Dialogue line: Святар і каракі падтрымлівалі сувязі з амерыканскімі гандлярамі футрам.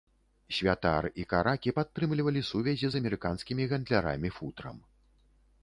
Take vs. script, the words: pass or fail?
pass